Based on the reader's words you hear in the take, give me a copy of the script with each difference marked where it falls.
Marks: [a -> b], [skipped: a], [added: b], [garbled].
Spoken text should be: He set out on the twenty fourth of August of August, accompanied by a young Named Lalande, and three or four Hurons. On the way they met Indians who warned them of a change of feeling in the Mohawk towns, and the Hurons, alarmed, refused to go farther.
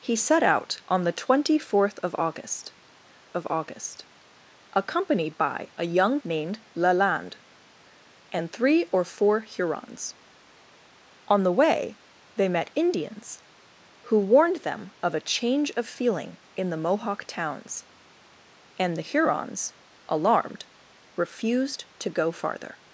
He set out on the twenty fourth of August of August, accompanied by a young Named Lalande, and three or four Hurons. On the way they met Indians who warned them of a change of feeling in the Mohawk towns, and the Hurons, alarmed, refused to go farther.